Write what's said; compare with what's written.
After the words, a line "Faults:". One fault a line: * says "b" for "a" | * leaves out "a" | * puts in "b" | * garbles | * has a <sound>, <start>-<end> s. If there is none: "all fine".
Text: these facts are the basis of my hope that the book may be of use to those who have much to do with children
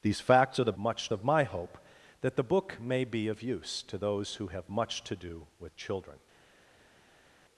these facts are the much of my hope that the book may be of use to those who have much to do with children
Faults:
* says "much" for "basis"